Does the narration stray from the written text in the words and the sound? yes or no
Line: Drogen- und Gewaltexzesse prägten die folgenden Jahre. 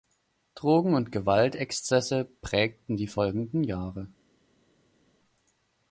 no